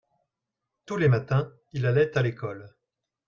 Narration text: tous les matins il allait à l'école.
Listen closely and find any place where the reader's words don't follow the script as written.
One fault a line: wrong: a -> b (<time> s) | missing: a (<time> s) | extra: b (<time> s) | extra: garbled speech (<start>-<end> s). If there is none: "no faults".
no faults